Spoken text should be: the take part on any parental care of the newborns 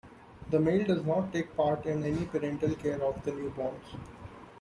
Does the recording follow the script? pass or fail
fail